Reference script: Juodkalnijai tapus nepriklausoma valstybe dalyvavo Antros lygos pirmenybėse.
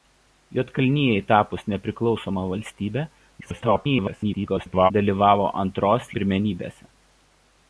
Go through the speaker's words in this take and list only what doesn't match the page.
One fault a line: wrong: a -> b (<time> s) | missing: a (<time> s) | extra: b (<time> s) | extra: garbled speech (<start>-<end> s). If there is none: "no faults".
extra: garbled speech (3.4-4.9 s)
missing: lygos (6.1 s)